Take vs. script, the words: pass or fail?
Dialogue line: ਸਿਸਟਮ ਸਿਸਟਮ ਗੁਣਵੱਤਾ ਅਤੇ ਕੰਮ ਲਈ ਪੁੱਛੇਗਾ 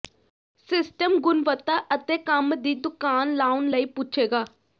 fail